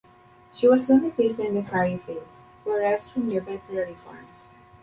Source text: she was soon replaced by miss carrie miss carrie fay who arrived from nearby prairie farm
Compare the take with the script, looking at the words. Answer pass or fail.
fail